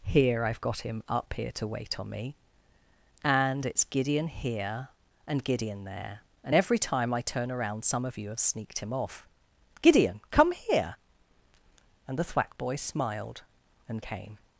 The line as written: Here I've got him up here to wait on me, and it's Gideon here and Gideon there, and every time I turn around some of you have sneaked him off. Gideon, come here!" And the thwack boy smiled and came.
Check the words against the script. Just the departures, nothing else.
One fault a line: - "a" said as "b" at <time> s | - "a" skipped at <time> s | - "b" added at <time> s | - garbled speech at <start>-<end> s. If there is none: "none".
none